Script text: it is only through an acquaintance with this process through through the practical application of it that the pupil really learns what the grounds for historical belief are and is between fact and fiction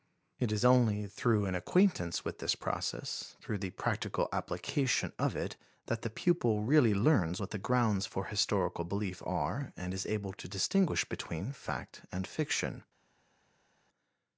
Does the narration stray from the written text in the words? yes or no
yes